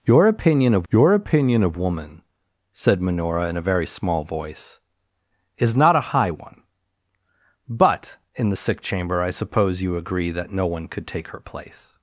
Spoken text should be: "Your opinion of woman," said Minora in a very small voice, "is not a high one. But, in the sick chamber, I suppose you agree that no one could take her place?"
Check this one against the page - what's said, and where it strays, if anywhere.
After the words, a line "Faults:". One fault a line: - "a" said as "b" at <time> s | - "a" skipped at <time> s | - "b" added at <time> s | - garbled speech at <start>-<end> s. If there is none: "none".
"Your opinion of your opinion of woman," said Minora in a very small voice, "is not a high one. But, in the sick chamber, I suppose you agree that no one could take her place?"
Faults:
- "your opinion of" added at 0.9 s